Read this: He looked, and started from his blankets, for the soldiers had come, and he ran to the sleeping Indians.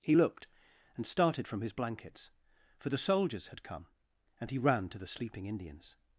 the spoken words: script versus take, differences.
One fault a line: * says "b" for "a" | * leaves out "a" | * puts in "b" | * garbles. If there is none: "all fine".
all fine